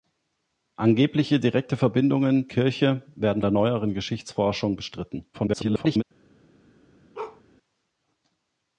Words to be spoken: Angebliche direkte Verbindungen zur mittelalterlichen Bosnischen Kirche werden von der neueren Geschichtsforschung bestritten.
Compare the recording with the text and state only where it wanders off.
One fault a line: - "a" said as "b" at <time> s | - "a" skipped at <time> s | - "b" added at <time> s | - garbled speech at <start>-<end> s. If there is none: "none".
- "zur mittelalterlichen Bosnischen" skipped at 2.5 s
- "von" skipped at 3.4 s
- garbled speech at 5.3-6.0 s